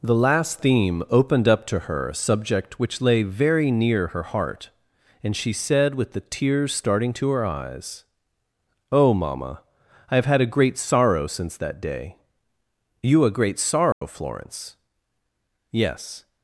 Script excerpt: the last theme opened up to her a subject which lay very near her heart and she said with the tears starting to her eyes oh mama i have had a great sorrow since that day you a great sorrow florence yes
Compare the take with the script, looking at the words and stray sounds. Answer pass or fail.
fail